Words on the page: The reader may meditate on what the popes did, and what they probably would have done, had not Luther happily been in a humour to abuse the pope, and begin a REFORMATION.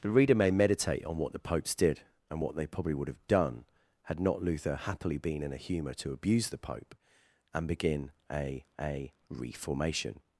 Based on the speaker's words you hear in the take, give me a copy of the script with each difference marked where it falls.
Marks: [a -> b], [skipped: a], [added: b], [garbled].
The reader may meditate on what the popes did, and what they probably would have done, had not Luther happily been in a humour to abuse the pope, and begin a [added: a] REFORMATION.